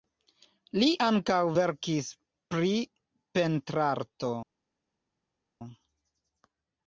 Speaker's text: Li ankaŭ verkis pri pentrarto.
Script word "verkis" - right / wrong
right